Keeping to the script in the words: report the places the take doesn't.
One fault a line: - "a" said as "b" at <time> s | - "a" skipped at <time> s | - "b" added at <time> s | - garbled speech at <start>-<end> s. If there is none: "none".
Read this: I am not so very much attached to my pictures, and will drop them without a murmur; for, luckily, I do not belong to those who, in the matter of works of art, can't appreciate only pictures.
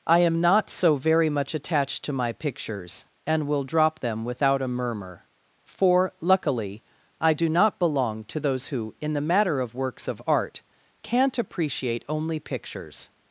none